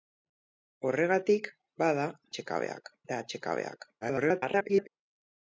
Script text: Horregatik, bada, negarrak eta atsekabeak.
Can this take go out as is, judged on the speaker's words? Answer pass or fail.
fail